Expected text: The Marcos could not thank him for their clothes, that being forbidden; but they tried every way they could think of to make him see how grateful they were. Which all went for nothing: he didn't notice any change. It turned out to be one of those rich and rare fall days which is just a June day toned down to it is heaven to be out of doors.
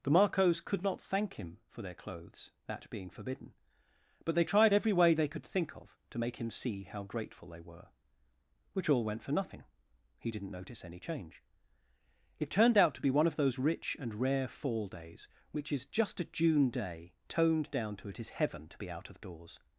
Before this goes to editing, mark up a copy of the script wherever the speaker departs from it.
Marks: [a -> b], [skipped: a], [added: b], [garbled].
The Marcos could not thank him for their clothes, that being forbidden; but they tried every way they could think of to make him see how grateful they were. Which all went for nothing: he didn't notice any change. It turned out to be one of those rich and rare fall days which is just a June day toned down to it is heaven to be out of doors.